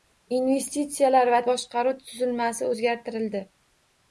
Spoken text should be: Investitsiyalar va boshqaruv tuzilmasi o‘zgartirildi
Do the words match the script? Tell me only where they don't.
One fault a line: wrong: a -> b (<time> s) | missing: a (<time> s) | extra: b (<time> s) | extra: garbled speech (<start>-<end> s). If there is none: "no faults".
no faults